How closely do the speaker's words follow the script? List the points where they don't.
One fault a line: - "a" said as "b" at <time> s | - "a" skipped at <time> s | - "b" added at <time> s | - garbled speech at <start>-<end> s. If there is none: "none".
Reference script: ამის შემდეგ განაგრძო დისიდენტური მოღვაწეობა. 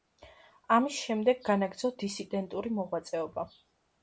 none